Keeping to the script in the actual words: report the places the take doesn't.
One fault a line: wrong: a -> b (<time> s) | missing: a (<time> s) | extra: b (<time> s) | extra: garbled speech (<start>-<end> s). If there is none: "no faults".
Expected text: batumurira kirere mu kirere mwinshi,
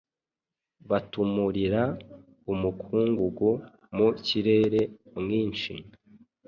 wrong: kirere -> umukungugu (2.5 s)